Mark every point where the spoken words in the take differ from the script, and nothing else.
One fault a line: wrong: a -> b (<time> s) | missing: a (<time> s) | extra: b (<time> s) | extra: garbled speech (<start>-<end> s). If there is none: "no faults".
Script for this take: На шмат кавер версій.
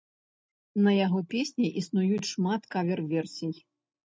extra: яго песні існуюць (1.1 s)